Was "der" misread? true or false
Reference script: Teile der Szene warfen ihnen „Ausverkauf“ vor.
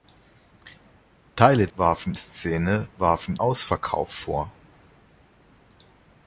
true